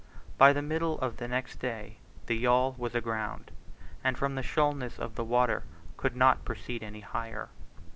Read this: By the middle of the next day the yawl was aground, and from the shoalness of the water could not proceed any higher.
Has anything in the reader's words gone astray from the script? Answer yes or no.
no